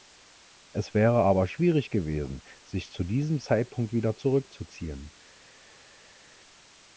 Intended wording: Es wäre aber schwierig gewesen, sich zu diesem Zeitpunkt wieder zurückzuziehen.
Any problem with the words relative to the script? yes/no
no